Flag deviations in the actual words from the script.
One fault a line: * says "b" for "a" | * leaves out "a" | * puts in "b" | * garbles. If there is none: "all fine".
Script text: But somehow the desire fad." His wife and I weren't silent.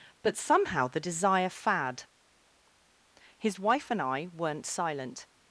all fine